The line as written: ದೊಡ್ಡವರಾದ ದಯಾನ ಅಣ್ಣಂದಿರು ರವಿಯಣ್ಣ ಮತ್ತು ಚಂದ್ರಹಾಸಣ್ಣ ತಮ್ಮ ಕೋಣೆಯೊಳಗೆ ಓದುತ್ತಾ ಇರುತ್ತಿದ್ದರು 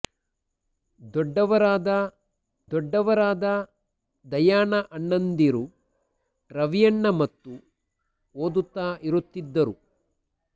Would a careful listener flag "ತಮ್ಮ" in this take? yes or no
yes